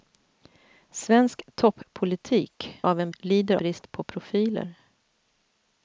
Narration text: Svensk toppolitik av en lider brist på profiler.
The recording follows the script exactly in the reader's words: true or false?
true